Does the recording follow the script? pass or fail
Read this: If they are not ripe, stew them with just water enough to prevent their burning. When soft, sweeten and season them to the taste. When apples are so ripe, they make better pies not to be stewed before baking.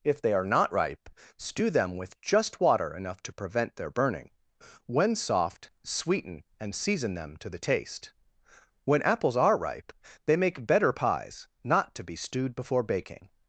fail